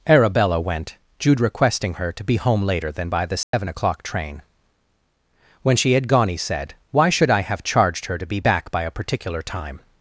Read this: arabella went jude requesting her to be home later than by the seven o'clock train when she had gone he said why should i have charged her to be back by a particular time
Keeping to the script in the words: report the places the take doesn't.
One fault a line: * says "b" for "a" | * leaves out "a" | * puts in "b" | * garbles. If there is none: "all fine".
all fine